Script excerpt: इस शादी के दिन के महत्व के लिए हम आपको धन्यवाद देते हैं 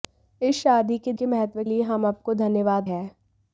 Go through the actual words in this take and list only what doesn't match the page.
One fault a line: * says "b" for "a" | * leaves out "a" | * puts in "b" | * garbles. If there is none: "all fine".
* leaves out "दिन"
* leaves out "के"
* leaves out "देते"